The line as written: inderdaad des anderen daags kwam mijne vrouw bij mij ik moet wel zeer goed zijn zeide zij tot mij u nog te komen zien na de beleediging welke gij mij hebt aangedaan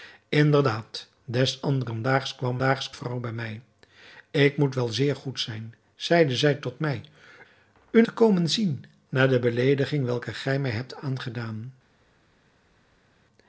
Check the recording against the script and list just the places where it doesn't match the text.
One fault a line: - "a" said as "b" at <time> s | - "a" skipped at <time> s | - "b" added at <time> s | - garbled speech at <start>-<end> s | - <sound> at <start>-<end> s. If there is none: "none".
- "mijne" said as "daags" at 2.6 s
- "nog" skipped at 8.0 s